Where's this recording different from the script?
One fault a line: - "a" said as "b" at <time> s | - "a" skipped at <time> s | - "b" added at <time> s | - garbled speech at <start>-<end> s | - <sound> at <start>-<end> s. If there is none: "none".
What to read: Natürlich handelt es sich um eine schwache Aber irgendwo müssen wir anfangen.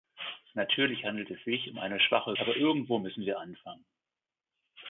none